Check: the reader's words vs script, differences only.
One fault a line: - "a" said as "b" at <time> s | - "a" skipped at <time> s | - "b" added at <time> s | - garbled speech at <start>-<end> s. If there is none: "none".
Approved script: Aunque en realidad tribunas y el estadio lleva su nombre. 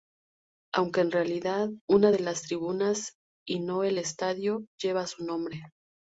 - "una de las" added at 1.9 s
- "no" added at 3.6 s